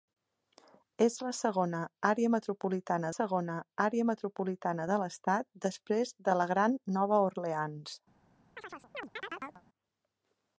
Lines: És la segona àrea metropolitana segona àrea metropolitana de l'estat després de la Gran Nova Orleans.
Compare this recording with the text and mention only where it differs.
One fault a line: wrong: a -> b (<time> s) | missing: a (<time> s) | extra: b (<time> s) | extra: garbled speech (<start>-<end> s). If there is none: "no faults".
no faults